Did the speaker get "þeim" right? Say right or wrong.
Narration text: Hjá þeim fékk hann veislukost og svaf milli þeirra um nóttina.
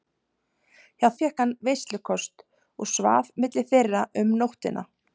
wrong